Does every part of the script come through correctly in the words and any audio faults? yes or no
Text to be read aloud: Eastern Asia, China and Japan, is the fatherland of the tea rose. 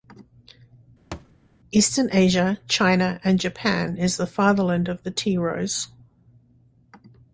no